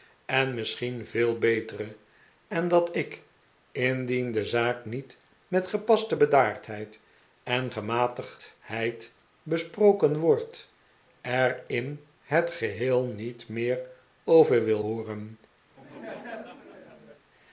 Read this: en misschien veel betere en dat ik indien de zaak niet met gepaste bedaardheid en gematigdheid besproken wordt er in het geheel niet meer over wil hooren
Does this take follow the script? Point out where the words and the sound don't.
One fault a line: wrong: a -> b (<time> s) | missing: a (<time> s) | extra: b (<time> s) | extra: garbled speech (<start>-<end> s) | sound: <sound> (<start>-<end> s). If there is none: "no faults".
sound: laugh (15.7-17.3 s)